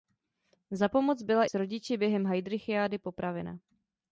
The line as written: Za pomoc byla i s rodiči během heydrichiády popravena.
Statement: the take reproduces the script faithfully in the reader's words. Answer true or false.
false